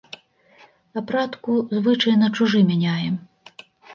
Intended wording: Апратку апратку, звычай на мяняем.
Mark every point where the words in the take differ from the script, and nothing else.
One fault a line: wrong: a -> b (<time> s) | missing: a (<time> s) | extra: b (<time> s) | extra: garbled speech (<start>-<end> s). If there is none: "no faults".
missing: апратку (1.6 s)
extra: чужы (2.4 s)